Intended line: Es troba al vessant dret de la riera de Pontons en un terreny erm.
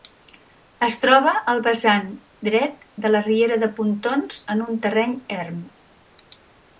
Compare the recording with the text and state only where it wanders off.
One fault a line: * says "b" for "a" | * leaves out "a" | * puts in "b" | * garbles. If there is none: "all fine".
all fine